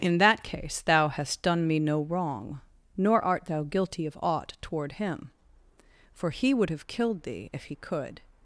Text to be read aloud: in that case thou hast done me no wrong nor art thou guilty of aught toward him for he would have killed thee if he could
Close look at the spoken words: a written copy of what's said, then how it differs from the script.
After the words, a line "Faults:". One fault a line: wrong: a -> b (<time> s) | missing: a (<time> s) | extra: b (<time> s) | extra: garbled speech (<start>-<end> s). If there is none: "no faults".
in that case thou hast done me no wrong nor art thou guilty of aught toward him for he would have killed thee if he could
Faults:
no faults